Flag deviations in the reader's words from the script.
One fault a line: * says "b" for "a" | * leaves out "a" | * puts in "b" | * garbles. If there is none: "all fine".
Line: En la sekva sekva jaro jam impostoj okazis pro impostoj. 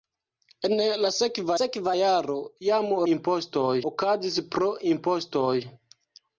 all fine